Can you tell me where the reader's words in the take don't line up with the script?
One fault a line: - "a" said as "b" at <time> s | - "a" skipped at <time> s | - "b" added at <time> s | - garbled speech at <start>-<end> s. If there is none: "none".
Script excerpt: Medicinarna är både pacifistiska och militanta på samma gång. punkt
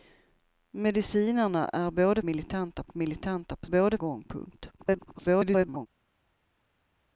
- "pacifistiska" said as "militanta" at 2.2 s
- "samma" said as "både" at 3.7 s
- garbled speech at 4.8-5.9 s